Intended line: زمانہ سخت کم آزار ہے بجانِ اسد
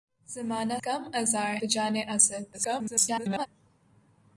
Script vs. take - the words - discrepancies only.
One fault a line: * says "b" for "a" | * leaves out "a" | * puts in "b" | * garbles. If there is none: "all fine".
* leaves out "سخت"
* leaves out "ہے"
* garbles